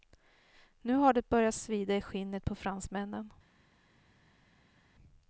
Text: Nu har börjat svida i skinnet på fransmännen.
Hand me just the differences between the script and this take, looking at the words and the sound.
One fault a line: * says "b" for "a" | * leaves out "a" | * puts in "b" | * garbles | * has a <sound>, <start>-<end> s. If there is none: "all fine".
* puts in "det"